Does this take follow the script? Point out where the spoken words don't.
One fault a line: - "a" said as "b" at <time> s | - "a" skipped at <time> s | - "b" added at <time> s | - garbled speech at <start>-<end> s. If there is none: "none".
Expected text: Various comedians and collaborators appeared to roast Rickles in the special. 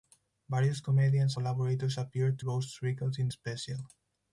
- "and" skipped at 1.4 s
- "to" skipped at 2.4 s
- "the" skipped at 3.3 s